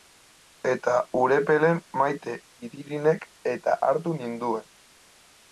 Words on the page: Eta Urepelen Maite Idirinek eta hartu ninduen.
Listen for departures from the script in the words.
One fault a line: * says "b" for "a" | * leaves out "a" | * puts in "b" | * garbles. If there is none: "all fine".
all fine